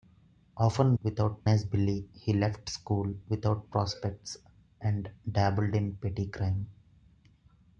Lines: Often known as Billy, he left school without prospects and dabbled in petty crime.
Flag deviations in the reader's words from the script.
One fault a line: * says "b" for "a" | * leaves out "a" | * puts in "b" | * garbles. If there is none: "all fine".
* says "without" for "known"